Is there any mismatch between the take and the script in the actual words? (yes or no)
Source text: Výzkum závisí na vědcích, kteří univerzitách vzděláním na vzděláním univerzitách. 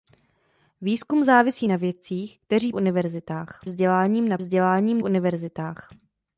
no